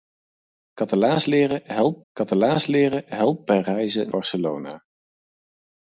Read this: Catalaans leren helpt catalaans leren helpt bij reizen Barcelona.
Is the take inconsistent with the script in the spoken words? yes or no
no